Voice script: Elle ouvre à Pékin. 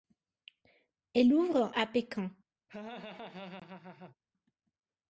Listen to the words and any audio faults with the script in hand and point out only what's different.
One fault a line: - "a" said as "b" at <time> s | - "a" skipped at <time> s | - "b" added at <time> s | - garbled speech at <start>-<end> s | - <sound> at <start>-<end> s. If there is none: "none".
- laugh at 2.7-4.2 s